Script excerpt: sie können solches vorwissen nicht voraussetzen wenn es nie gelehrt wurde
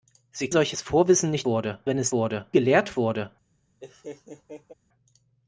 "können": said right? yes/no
no